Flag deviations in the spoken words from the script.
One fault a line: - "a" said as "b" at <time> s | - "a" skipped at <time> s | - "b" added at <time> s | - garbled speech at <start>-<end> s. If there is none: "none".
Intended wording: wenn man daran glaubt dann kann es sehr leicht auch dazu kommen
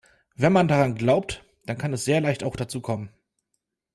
none